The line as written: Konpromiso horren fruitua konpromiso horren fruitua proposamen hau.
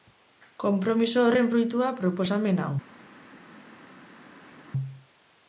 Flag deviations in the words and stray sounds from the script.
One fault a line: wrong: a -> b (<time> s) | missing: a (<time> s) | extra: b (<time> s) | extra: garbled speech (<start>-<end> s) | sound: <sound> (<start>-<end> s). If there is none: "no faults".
missing: konpromiso horren fruitua (1.9 s)